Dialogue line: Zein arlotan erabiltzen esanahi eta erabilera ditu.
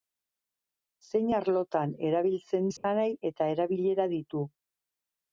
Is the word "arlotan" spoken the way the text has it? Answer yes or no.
yes